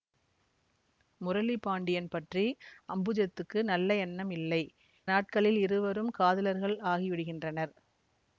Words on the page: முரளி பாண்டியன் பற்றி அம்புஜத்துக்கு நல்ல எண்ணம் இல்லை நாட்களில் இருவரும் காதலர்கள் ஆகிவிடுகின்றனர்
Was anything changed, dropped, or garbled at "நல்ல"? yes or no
no